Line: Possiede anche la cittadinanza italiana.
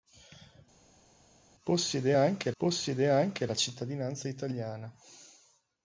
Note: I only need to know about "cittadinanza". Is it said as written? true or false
true